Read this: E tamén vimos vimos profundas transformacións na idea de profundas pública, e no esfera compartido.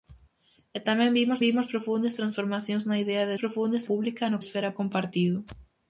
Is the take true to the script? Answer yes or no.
yes